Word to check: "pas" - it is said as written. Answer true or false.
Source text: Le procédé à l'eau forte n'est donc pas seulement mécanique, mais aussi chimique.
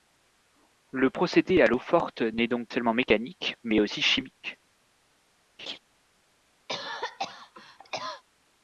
false